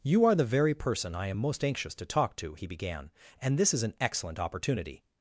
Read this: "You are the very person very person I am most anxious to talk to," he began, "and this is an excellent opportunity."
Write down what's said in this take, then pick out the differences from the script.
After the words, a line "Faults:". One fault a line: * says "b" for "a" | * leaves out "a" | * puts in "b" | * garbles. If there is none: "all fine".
"You are the very person I am most anxious to talk to," he began, "and this is an excellent opportunity."
Faults:
* leaves out "very person"